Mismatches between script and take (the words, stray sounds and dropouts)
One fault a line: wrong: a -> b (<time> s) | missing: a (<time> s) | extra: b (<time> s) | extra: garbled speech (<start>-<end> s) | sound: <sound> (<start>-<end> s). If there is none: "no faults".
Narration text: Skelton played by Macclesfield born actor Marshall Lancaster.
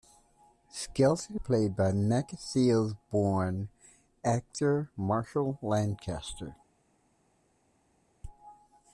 no faults